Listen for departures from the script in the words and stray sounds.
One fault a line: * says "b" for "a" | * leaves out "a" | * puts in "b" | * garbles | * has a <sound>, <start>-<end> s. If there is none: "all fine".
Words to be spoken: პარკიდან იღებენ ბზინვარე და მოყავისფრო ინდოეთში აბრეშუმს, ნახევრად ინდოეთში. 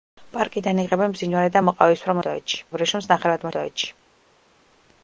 all fine